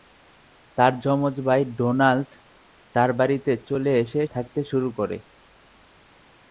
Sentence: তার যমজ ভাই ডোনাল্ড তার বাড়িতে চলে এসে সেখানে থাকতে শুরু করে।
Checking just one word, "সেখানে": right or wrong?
wrong